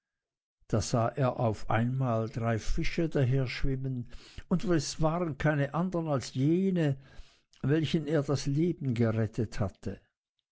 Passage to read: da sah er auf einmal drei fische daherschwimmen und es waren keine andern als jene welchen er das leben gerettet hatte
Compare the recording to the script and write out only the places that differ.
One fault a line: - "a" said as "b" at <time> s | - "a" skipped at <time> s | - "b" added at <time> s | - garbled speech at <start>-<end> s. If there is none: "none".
none